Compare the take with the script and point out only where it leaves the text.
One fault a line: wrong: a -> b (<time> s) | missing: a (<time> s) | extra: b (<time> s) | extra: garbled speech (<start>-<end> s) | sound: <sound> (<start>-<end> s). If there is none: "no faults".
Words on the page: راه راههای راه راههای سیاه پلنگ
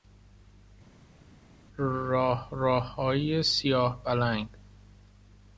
missing: راه راههای (3.4 s)